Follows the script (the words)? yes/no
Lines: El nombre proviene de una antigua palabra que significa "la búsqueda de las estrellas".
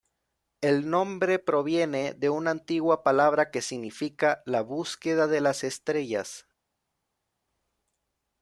yes